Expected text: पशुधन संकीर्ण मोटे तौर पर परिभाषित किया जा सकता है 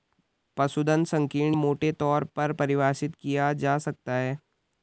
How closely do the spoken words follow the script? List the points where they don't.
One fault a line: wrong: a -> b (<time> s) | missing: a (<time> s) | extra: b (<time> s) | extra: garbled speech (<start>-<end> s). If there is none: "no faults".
no faults